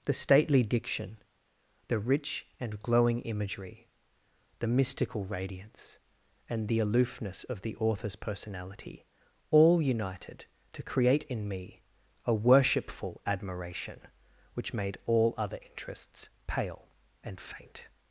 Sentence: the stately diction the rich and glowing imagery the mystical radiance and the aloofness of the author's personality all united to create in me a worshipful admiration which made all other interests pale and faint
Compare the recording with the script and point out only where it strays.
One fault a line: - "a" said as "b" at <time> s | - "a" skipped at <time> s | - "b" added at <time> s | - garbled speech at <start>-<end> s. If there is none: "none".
none